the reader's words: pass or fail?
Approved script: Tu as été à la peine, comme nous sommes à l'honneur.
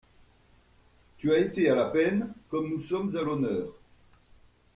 pass